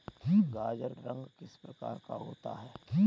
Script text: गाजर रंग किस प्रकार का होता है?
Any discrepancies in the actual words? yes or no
no